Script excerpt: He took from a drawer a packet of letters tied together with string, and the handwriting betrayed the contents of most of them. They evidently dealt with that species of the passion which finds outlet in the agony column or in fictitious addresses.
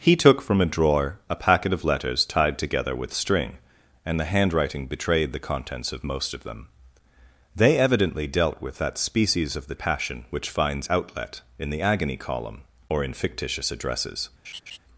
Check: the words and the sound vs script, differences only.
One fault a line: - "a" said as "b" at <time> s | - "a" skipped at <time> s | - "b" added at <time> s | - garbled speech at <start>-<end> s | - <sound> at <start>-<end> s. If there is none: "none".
- laugh at 14.4-14.8 s